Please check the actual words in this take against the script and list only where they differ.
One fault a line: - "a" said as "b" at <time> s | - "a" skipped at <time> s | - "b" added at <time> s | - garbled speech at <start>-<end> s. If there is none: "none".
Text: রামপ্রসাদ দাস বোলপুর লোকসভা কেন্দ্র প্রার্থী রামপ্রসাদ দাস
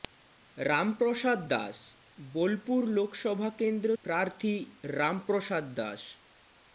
none